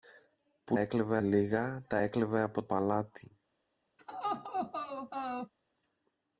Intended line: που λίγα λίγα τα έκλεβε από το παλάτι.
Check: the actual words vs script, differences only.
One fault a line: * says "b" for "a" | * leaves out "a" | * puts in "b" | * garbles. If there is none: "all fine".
* says "έκλεβε" for "λίγα"
* leaves out "το"